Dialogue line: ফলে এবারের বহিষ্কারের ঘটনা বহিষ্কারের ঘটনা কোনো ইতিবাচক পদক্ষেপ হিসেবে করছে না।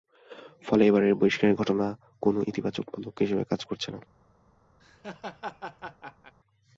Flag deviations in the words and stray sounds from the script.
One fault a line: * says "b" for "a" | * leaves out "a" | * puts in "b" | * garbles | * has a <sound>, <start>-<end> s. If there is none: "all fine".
* leaves out "বহিষ্কারের ঘটনা"
* puts in "কাজ"
* has a laugh, 4.8-6.3 s